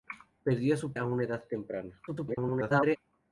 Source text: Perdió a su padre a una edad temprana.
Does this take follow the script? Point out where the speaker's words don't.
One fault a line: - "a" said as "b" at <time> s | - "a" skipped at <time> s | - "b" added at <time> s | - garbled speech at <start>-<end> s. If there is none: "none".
- "padre" skipped at 0.9 s
- garbled speech at 2.1-3.0 s